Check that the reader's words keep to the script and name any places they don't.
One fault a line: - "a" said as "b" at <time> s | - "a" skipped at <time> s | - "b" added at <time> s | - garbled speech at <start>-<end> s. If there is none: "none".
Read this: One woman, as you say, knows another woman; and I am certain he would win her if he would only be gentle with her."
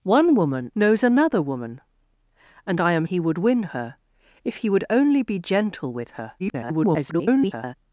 - "as you say" skipped at 0.7 s
- "certain" skipped at 3.1 s
- garbled speech at 6.4-7.7 s